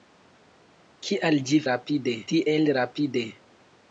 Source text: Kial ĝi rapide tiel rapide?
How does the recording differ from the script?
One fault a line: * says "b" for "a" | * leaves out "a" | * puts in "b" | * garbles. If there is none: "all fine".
all fine